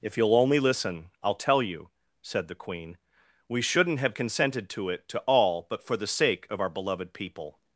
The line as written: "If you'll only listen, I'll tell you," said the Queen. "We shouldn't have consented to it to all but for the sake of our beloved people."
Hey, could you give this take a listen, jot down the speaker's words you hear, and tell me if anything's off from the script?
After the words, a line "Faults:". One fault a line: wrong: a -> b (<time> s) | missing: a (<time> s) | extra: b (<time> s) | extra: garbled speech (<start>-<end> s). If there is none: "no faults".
"If you'll only listen, I'll tell you," said the Queen. "We shouldn't have consented to it to all but for the sake of our beloved people."
Faults:
no faults